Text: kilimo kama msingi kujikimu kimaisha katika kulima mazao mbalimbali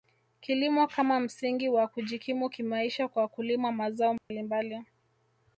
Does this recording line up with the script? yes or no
no